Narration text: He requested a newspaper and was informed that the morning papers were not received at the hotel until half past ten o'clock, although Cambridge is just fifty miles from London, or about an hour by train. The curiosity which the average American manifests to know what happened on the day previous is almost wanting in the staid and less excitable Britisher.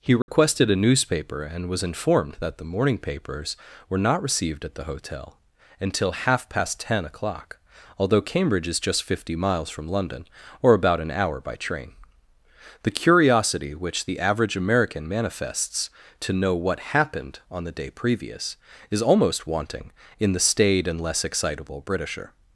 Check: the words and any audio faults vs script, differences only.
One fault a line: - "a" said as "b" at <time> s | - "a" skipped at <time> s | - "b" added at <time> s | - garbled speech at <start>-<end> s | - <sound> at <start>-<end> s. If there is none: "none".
- dropout at 0.2-0.3 s